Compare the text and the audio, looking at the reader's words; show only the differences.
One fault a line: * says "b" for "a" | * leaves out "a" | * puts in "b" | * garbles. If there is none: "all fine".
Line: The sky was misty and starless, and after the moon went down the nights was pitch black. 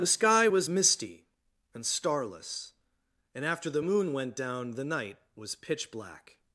* says "night" for "nights"